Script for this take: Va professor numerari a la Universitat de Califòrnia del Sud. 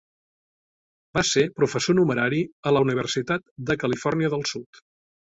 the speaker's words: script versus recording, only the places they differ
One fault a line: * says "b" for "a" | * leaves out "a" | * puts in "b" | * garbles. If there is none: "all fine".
* puts in "ser"